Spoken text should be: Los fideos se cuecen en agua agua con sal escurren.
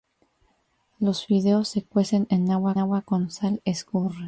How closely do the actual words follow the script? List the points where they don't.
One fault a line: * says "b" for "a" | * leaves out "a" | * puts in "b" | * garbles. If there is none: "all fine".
all fine